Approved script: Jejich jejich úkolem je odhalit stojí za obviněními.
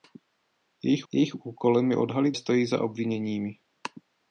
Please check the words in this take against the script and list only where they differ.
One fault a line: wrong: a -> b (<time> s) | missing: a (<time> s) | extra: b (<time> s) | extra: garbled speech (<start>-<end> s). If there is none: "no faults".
no faults